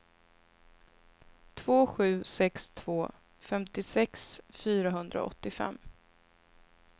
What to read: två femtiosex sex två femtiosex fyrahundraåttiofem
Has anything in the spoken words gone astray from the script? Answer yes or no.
yes